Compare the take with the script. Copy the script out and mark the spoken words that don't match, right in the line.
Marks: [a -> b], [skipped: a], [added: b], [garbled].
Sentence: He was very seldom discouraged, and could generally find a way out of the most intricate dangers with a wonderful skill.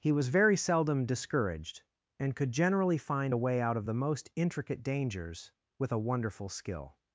He was very seldom discouraged, and could generally find a way out of the most intricate dangers with a wonderful skill.